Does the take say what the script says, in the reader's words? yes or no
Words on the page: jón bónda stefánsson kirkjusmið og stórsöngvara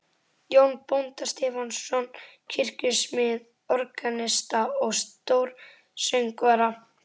no